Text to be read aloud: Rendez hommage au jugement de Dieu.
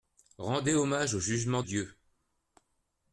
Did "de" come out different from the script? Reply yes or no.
yes